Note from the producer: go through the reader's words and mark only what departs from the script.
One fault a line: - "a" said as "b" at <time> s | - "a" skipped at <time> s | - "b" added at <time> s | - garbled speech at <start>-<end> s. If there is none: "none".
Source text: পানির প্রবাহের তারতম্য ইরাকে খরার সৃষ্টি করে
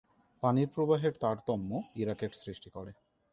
- "খরার" skipped at 2.3 s